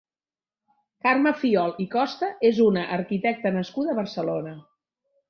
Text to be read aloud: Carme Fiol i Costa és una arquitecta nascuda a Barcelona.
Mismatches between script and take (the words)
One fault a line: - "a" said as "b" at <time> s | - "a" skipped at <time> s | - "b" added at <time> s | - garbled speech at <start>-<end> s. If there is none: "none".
none